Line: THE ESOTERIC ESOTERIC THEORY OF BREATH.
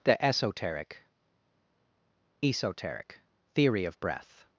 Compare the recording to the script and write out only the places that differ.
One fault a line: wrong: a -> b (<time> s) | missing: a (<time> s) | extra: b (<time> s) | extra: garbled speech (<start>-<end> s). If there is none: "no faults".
no faults